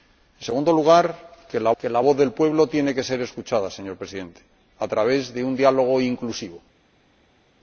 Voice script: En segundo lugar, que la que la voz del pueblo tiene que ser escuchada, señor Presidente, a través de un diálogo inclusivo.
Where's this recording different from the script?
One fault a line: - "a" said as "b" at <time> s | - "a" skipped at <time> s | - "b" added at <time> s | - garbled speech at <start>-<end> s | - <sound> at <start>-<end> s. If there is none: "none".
none